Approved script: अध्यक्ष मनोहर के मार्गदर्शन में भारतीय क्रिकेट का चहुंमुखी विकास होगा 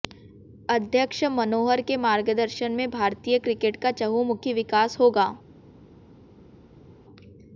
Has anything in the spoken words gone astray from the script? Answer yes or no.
no